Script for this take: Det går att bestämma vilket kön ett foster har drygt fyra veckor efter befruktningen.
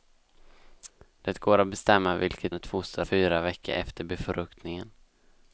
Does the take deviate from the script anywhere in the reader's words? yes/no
yes